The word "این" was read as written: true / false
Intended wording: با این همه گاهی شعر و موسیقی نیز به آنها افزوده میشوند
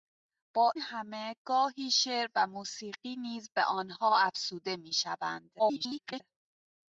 false